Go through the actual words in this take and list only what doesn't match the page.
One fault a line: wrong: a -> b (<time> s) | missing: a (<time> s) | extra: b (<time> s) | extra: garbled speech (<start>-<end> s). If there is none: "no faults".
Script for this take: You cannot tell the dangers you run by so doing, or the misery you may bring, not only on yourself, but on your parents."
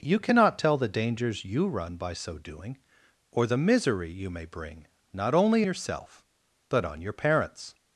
missing: on (5.6 s)